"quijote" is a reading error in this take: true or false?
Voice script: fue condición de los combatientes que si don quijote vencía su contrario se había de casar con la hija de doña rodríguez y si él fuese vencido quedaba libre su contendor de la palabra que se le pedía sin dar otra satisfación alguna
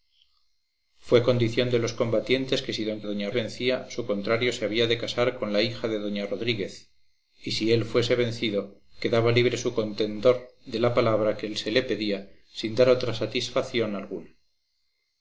true